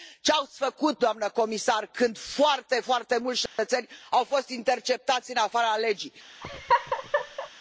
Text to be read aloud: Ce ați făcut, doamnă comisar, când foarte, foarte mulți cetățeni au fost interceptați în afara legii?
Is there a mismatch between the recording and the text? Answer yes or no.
no